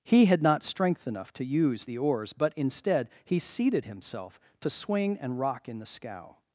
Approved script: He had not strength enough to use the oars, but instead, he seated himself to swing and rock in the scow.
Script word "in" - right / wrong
right